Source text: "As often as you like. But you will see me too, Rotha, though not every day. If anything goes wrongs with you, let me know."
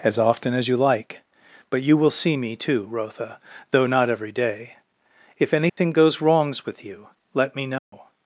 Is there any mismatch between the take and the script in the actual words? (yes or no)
no